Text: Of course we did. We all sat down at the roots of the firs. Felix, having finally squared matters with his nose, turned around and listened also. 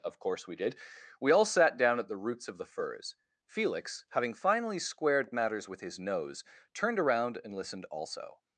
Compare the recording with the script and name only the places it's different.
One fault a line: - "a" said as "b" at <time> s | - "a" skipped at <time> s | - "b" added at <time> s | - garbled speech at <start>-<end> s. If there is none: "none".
none